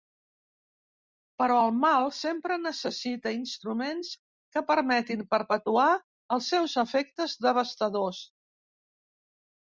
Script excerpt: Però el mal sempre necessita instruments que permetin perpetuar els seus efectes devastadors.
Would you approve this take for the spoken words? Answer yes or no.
yes